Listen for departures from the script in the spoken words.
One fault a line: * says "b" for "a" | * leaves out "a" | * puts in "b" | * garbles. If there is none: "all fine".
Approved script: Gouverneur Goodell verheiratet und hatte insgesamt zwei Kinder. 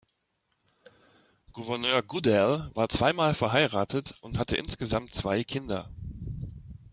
* puts in "war zweimal"